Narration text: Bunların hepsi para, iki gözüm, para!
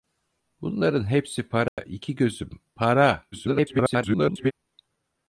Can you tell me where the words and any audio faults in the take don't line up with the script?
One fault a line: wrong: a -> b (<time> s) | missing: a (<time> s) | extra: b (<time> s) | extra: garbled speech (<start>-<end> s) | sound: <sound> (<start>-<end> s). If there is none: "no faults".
sound: dropout (1.7-1.8 s)
extra: garbled speech (3.3-4.5 s)